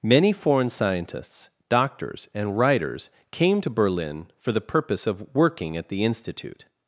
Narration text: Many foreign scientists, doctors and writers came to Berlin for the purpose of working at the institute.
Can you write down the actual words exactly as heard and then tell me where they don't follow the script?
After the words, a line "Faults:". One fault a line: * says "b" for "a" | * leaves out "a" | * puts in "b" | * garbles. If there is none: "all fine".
Many foreign scientists, doctors and writers came to Berlin for the purpose of working at the institute.
Faults:
all fine